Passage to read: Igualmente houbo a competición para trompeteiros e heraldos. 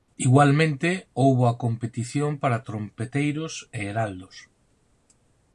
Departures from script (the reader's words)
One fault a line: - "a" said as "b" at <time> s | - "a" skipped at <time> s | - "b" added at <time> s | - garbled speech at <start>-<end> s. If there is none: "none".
none